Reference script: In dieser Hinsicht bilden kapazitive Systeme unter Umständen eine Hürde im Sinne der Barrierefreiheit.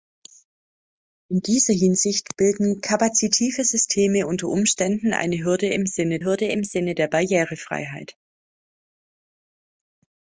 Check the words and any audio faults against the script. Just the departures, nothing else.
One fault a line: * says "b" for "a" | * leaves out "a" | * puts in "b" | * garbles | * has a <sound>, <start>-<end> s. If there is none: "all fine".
* puts in "Hürde im Sinne"